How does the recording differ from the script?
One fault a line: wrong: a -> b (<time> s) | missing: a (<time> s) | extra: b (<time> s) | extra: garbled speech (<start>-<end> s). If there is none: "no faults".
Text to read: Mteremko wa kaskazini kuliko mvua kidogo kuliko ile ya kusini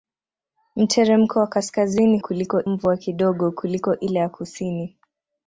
no faults